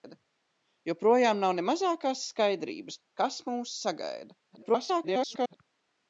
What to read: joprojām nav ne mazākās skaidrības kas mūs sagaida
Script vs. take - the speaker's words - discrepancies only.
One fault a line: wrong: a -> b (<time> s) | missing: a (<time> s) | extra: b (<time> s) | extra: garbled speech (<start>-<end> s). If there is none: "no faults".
extra: garbled speech (4.5-5.6 s)